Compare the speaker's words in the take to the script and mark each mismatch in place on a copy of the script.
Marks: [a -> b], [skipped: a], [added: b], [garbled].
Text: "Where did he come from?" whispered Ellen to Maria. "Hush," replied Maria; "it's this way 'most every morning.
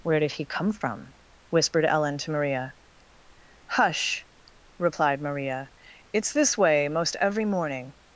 "Where did he come from?" whispered Ellen to Maria. "Hush," replied Maria; "it's this way 'most every morning.